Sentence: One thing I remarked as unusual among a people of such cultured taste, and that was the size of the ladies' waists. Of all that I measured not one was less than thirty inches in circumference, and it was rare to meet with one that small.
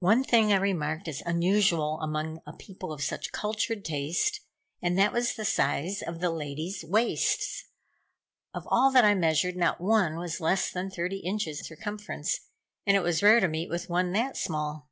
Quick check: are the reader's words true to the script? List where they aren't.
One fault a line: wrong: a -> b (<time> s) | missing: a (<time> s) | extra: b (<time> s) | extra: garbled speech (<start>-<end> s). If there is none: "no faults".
missing: in (11.6 s)